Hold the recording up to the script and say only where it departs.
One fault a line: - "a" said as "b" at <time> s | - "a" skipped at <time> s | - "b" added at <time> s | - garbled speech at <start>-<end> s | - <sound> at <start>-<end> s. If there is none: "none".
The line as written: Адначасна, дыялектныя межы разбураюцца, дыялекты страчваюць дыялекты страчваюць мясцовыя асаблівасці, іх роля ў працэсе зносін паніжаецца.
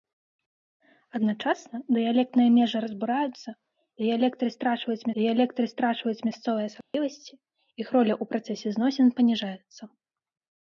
- dropout at 6.8-6.9 s